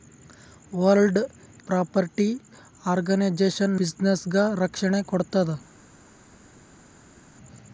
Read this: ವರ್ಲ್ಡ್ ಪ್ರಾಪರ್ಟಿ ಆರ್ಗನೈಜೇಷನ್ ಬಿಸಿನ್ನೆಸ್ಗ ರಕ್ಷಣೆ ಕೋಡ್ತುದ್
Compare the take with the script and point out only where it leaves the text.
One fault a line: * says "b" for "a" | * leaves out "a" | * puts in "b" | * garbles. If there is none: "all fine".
all fine